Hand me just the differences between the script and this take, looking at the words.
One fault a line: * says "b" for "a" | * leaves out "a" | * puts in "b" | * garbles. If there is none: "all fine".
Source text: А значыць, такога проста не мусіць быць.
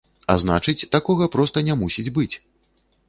all fine